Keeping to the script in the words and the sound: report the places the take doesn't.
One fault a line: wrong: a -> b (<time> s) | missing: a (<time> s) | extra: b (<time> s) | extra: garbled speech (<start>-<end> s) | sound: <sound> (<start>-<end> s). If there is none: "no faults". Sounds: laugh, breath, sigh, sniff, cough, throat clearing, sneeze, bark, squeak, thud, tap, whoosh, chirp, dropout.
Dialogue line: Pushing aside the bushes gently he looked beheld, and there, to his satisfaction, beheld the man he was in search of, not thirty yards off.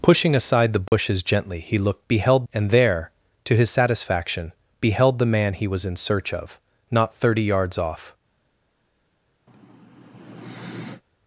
sound: dropout (0.9-0.9 s)
sound: sigh (9.5-11.0 s)